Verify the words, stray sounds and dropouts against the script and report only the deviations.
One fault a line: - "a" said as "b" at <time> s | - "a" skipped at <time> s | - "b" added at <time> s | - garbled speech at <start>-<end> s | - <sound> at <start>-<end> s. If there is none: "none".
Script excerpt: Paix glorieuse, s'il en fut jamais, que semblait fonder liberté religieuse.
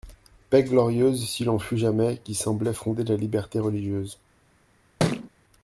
- "que" said as "qui" at 2.2 s
- "la" added at 3.0 s
- thud at 5.0-5.3 s